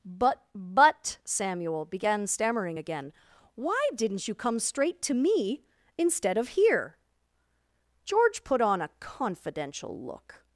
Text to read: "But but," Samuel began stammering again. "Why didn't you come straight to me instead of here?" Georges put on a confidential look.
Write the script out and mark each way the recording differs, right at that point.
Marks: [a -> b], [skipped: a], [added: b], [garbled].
"But but," Samuel began stammering again. "Why didn't you come straight to me instead of here?" [Georges -> George] put on a confidential look.